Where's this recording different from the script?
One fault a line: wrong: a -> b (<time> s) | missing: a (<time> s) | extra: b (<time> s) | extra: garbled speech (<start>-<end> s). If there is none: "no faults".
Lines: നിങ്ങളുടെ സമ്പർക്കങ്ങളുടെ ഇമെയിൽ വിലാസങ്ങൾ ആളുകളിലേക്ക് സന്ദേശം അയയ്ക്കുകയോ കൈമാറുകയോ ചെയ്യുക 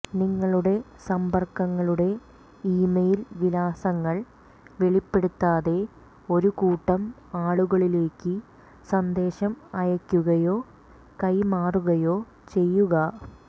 extra: വെളിപ്പെടുത്താതെ ഒരു കൂട്ടം (4.8 s)